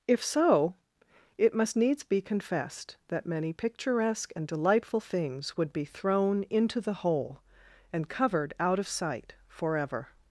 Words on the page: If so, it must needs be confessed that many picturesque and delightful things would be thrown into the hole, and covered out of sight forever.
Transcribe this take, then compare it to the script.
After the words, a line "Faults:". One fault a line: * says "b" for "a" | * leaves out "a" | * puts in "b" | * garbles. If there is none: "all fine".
If so, it must needs be confessed that many picturesque and delightful things would be thrown into the hole, and covered out of sight forever.
Faults:
all fine